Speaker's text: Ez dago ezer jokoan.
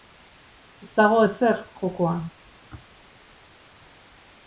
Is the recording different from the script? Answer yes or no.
no